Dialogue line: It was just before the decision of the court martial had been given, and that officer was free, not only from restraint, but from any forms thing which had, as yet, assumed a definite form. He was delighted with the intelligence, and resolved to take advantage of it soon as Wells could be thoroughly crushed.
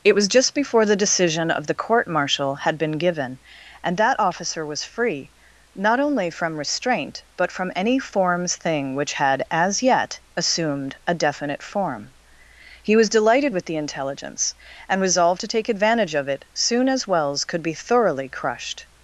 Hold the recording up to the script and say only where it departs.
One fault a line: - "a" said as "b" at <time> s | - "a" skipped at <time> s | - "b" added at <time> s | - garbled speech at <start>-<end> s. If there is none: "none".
none